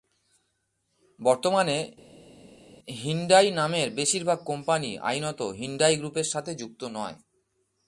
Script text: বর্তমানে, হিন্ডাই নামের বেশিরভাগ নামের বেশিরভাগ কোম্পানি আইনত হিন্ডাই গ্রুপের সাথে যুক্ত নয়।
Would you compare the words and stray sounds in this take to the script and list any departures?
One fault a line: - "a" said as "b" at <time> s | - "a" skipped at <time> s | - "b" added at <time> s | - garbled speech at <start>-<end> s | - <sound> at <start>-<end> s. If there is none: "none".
- "নামের বেশিরভাগ" skipped at 4.4 s